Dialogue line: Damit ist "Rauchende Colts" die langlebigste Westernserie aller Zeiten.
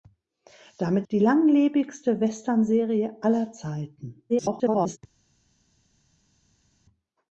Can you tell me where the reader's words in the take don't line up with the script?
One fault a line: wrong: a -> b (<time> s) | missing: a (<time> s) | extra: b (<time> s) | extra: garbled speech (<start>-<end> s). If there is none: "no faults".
missing: ist Rauchende Colts (1.1 s)
extra: garbled speech (4.3-5.0 s)